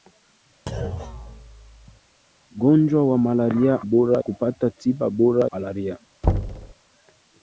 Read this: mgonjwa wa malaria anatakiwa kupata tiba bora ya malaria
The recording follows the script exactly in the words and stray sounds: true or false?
false